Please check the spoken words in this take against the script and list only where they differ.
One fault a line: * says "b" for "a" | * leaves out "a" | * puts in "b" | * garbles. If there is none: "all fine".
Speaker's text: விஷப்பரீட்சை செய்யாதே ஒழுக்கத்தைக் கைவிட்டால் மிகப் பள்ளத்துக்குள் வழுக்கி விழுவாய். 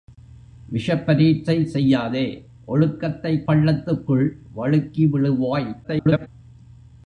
* leaves out "கைவிட்டால் மிகப்"
* garbles